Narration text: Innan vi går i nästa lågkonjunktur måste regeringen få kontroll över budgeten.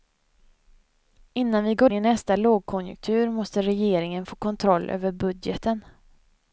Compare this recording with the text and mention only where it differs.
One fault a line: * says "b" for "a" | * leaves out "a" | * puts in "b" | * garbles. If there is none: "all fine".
all fine